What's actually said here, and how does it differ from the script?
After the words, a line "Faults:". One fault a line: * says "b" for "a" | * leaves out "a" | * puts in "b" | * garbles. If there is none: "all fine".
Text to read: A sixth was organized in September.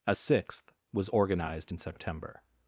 A sixth was organized in September.
Faults:
all fine